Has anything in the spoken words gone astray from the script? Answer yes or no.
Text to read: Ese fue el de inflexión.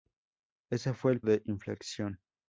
no